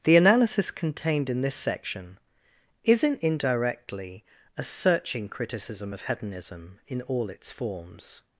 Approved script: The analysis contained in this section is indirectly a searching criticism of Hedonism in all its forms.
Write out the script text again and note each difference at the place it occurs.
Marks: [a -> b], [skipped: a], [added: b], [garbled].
The analysis contained in this section [is -> isn't] indirectly a searching criticism of Hedonism in all its forms.